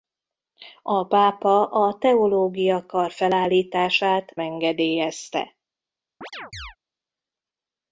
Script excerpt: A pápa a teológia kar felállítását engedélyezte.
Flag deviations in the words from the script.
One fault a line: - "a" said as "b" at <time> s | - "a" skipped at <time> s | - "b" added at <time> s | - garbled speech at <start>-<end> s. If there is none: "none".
none